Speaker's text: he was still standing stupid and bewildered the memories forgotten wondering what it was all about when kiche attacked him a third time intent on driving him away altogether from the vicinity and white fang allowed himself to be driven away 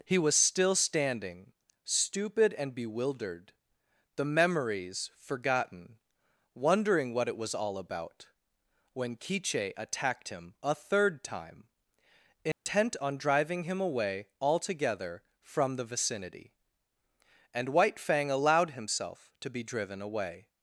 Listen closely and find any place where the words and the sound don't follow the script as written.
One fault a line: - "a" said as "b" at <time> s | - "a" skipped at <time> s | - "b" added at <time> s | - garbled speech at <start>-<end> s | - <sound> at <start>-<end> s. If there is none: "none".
- dropout at 12.5-12.7 s